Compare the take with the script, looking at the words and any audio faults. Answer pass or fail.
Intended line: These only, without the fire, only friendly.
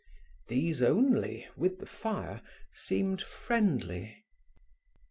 fail